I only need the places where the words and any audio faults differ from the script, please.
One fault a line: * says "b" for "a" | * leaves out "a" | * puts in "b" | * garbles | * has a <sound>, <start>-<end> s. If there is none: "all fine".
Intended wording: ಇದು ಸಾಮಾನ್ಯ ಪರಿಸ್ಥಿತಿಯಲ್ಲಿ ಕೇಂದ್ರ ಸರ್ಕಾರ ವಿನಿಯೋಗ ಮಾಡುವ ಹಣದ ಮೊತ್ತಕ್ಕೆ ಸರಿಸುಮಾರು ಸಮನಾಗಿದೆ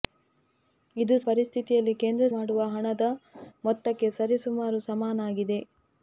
* leaves out "ಸಾಮಾನ್ಯ"
* leaves out "ಸರ್ಕಾರ ವಿನಿಯೋಗ"